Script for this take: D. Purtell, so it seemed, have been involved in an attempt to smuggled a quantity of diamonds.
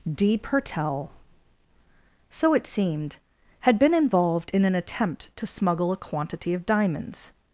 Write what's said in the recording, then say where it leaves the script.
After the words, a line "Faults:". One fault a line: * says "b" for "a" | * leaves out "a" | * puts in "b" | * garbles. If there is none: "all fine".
D. Purtell, so it seemed, had been involved in an attempt to smuggle a quantity of diamonds.
Faults:
* says "had" for "have"
* says "smuggle" for "smuggled"